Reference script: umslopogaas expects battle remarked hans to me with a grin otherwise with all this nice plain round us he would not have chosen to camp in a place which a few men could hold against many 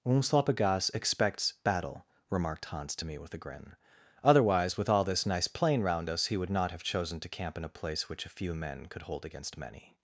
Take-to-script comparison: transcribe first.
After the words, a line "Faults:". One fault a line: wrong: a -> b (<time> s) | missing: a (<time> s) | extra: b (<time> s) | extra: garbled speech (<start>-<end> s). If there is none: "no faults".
umslopogaas expects battle remarked hans to me with a grin otherwise with all this nice plain round us he would not have chosen to camp in a place which a few men could hold against many
Faults:
no faults